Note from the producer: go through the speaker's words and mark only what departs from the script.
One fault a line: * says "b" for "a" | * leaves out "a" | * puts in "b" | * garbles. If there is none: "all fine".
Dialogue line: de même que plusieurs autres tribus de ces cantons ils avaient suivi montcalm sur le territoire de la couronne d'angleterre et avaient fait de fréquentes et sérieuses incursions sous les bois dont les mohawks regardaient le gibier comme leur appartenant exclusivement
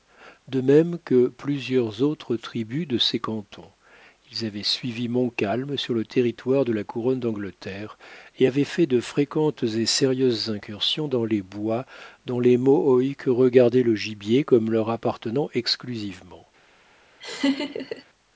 * says "dans" for "sous"